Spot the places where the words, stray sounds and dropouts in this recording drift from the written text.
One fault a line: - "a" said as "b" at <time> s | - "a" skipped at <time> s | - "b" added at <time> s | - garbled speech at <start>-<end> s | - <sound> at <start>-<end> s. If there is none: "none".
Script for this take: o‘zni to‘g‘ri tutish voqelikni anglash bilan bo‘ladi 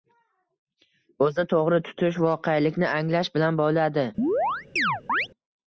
- chirp at 4.2-5.3 s